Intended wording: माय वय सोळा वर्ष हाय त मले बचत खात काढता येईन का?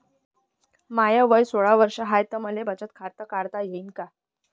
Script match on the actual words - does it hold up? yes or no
yes